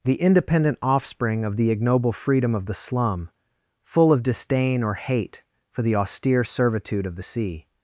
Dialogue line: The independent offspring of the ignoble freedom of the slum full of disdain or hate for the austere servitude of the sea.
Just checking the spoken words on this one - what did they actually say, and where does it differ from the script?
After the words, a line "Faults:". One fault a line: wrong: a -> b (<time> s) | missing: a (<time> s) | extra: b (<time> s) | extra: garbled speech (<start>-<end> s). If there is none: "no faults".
The independent offspring of the ignoble freedom of the slum full of disdain or hate for the austere servitude of the sea.
Faults:
no faults